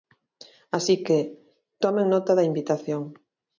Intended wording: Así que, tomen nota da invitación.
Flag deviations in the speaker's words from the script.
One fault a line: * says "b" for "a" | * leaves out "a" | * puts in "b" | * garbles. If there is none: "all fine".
all fine